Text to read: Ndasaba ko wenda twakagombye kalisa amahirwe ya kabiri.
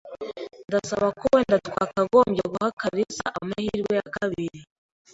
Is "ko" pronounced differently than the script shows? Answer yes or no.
no